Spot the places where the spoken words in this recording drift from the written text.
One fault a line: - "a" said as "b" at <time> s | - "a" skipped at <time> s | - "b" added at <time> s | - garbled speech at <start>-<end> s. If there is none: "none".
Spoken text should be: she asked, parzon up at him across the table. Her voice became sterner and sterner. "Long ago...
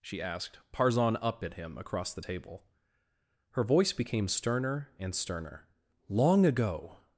none